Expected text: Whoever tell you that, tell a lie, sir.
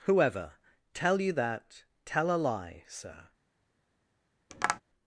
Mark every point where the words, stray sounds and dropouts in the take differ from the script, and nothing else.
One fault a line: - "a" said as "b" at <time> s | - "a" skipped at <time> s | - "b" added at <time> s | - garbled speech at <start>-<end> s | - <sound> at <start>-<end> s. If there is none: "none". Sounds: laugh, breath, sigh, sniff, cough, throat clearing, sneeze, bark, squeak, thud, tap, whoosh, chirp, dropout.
- tap at 4.5-4.8 s